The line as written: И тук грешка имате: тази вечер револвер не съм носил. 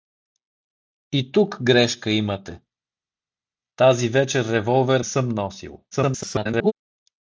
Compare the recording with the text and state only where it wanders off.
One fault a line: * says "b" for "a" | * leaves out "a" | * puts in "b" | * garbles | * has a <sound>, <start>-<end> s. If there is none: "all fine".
* leaves out "не"
* garbles